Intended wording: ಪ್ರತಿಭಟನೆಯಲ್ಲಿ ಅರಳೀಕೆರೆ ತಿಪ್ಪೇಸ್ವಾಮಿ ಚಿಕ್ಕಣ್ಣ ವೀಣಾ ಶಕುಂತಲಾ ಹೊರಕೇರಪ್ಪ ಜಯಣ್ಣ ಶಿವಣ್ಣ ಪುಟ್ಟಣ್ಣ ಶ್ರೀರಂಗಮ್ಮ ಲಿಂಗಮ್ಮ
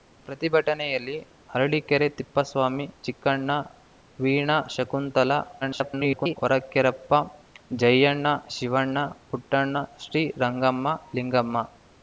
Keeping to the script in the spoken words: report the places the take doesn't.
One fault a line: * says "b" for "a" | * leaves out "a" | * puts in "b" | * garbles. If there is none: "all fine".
* garbles